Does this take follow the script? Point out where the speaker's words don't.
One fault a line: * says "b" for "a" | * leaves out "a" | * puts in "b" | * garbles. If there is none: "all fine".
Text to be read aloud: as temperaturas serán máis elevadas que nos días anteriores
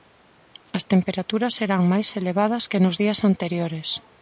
all fine